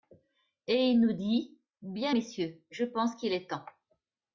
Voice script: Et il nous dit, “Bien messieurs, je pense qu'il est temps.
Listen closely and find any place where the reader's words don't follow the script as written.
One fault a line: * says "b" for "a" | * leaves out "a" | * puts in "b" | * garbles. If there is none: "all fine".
all fine